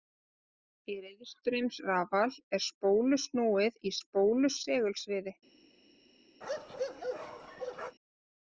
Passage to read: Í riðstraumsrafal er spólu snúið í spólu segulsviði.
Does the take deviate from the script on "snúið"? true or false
false